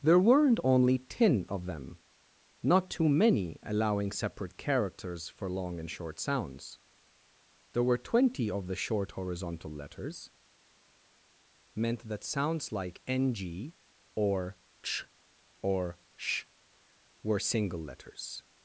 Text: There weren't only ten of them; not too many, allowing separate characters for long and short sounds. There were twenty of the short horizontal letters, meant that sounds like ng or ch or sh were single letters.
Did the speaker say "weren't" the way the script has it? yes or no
yes